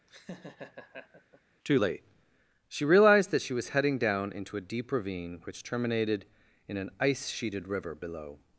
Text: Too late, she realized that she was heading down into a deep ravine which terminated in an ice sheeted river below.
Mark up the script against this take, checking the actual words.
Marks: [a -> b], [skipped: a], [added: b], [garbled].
Too late, she realized that she was heading down into a deep ravine which terminated in an ice sheeted river below.